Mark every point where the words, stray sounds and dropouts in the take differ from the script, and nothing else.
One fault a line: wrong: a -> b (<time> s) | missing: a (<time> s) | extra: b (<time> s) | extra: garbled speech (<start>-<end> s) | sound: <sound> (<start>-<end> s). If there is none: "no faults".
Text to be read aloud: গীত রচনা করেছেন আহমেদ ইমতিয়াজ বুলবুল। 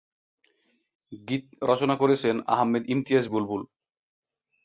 no faults